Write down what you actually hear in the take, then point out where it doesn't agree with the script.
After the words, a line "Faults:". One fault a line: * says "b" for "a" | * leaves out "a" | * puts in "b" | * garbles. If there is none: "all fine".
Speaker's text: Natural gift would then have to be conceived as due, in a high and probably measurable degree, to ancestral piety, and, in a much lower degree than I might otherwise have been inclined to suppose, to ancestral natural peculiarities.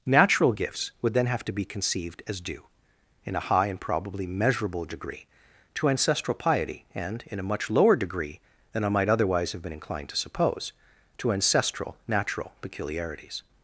Natural gifts would then have to be conceived as due, in a high and probably measurable degree, to ancestral piety, and, in a much lower degree than I might otherwise have been inclined to suppose, to ancestral natural peculiarities.
Faults:
* says "gifts" for "gift"